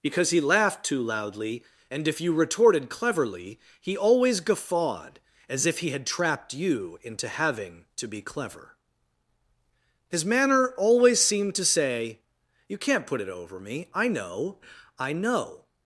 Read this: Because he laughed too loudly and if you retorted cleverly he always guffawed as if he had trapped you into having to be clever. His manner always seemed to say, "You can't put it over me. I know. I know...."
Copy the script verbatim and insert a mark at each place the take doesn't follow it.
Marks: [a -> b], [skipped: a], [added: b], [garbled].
Because he laughed too loudly and if you retorted cleverly he always guffawed as if he had trapped you into having to be clever. His manner always seemed to say, "You can't put it over me. I know. I know...."